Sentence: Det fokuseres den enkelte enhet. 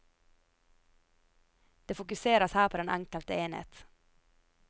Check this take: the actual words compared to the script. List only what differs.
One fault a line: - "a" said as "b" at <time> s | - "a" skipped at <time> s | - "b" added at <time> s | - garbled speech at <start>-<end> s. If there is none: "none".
- "her på" added at 2.5 s